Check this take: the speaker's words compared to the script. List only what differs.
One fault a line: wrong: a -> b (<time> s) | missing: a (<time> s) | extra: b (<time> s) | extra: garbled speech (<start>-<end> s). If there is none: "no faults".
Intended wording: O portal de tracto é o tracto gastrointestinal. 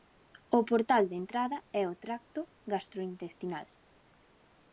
wrong: tracto -> entrada (1.2 s)